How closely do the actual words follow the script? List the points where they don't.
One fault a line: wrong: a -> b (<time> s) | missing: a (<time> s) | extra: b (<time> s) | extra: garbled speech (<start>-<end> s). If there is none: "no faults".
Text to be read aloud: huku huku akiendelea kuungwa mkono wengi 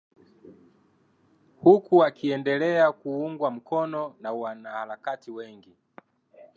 missing: huku (2.0 s)
extra: na wanaharakati (4.2 s)